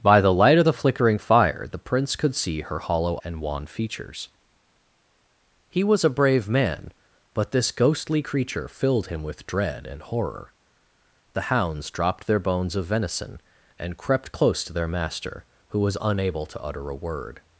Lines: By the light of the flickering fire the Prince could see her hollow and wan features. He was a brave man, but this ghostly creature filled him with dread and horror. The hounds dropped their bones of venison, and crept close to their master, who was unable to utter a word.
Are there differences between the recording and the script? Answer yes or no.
no